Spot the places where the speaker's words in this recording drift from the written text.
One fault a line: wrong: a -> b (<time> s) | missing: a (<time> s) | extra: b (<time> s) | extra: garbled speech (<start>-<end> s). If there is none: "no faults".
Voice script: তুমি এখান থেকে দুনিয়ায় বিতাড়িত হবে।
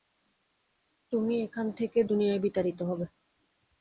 no faults